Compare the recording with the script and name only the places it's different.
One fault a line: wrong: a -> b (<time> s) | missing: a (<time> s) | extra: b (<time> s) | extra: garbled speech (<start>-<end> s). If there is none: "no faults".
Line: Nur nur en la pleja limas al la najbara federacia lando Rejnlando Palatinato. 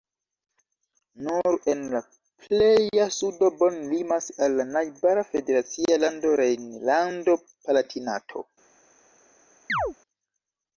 missing: nur (1.6 s)
extra: sudo Bonn (3.2 s)